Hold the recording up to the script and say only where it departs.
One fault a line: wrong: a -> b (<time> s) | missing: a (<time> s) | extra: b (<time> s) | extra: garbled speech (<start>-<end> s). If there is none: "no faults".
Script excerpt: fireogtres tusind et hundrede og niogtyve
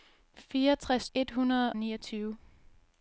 missing: tusind (1.1 s)
missing: og (1.7 s)